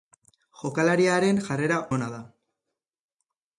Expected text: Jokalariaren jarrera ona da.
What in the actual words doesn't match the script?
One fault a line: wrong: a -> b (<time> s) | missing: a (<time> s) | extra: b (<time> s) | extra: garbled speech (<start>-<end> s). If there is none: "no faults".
no faults